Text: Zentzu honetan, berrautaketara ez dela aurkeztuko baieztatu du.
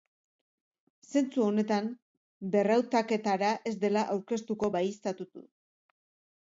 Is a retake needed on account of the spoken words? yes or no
no